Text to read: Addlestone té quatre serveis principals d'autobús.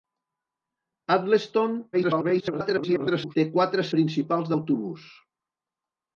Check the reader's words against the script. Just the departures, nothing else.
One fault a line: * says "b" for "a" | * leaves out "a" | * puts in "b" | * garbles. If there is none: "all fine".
* garbles
* leaves out "serveis"